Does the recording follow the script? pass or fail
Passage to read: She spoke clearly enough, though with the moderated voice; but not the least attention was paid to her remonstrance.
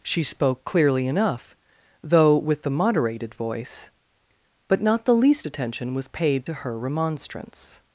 pass